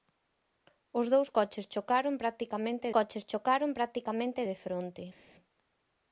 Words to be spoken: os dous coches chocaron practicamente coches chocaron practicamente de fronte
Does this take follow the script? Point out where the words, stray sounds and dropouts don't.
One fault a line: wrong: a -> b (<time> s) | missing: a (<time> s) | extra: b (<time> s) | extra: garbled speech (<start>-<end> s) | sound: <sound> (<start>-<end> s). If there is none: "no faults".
no faults